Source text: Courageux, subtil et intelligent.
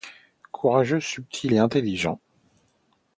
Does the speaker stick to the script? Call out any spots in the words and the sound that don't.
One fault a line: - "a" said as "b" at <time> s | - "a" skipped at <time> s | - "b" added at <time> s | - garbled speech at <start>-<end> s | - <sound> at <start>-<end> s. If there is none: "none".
none